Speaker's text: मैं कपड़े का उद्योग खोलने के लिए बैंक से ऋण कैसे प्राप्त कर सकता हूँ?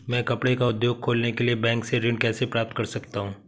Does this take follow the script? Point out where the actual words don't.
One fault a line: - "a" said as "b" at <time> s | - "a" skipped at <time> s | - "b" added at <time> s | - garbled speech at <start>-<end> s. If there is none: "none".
none